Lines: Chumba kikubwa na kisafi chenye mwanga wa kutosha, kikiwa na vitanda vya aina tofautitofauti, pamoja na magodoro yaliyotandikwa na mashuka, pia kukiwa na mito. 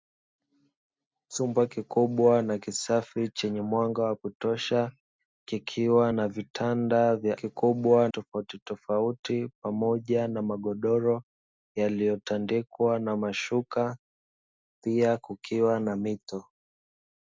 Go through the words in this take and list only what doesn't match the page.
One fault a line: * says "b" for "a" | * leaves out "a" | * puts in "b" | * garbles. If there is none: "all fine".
* says "kikubwa" for "aina"